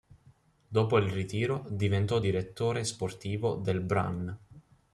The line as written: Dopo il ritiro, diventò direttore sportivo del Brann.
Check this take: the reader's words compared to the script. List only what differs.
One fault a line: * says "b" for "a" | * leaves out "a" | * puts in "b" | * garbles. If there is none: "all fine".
all fine